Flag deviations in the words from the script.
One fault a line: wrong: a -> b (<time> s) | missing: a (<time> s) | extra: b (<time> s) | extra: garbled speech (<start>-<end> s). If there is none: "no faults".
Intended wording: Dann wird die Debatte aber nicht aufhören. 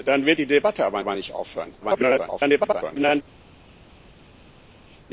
extra: aber (1.0 s)
extra: garbled speech (1.8-3.2 s)